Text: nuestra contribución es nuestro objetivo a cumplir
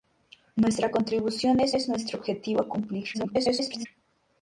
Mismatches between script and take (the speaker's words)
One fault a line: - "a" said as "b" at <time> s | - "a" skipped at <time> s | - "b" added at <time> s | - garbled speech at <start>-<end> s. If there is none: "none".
- "es" added at 1.7 s
- garbled speech at 3.1-3.9 s